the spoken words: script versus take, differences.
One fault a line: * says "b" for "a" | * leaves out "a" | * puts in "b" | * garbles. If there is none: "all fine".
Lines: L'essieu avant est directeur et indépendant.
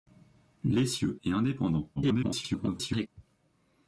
* leaves out "avant est directeur"
* garbles